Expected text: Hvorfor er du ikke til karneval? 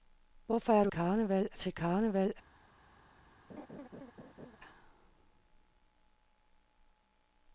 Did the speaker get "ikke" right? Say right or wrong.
wrong